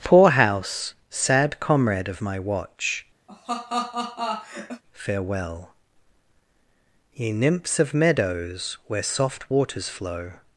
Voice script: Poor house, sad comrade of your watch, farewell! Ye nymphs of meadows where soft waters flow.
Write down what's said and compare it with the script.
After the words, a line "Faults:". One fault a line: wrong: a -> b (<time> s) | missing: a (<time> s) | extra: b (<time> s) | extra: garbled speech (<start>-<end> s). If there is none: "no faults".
Poor house, sad comrade of my watch, farewell! Ye nymphs of meadows where soft waters flow.
Faults:
wrong: your -> my (2.2 s)